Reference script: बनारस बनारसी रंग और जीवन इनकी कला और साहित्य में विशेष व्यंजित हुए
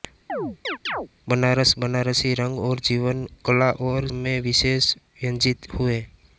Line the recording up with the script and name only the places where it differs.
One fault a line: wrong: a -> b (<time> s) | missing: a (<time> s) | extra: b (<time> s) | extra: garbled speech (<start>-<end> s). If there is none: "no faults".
missing: इनकी (3.3 s)
missing: साहित्य (4.1 s)